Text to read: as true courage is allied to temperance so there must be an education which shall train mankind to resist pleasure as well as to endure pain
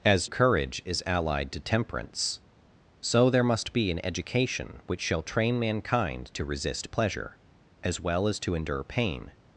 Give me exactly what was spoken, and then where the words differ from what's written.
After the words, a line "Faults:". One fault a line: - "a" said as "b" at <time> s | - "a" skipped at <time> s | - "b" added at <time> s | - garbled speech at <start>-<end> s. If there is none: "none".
as courage is allied to temperance so there must be an education which shall train mankind to resist pleasure as well as to endure pain
Faults:
- "true" skipped at 0.3 s